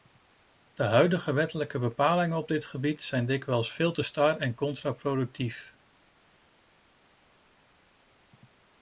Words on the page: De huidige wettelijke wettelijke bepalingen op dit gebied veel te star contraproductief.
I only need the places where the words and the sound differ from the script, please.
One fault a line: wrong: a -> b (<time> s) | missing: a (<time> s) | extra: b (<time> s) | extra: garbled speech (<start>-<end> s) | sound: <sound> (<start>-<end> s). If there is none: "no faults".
missing: wettelijke (1.8 s)
extra: zijn dikwijls (3.0 s)
extra: en (4.4 s)